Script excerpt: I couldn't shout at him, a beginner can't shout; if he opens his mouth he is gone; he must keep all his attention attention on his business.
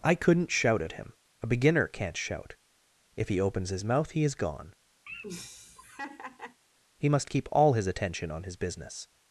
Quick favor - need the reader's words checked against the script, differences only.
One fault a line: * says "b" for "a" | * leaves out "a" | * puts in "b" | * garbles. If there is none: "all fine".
* leaves out "attention"